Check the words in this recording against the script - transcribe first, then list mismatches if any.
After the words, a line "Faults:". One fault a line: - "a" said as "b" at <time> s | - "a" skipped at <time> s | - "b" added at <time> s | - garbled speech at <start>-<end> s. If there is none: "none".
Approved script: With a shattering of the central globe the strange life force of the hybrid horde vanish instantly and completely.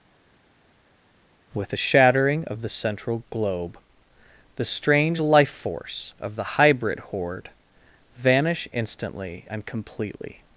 With a shattering of the central globe the strange life force of the hybrid horde vanish instantly and completely.
Faults:
none